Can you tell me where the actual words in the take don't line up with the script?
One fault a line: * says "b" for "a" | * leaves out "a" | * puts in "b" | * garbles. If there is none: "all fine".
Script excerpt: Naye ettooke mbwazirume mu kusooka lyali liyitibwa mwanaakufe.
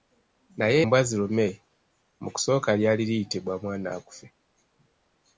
* leaves out "ettooke"